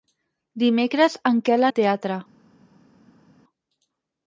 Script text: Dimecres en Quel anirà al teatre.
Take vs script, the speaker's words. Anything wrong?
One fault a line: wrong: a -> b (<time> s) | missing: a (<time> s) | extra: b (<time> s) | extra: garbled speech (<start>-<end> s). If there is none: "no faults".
missing: anirà (1.7 s)